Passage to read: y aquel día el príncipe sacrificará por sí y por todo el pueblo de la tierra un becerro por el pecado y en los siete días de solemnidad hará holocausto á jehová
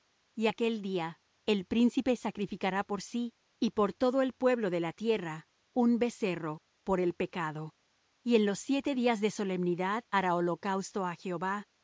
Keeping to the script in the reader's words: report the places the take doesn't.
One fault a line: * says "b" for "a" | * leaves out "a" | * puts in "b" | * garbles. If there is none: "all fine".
all fine